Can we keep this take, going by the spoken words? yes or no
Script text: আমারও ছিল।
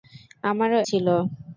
yes